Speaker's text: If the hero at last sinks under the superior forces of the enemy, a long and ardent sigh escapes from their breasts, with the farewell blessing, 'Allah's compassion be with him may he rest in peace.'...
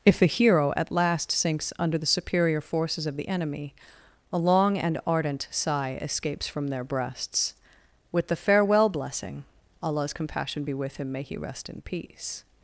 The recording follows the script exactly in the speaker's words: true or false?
true